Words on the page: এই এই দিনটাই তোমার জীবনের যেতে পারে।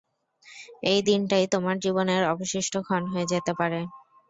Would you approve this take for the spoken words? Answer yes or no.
no